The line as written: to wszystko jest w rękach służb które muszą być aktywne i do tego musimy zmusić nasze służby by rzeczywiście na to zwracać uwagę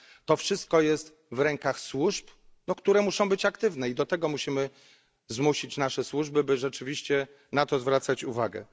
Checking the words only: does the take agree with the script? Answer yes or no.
yes